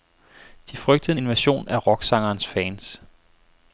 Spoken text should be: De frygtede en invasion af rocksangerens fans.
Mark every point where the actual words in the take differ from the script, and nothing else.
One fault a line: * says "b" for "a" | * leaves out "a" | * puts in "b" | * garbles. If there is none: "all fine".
all fine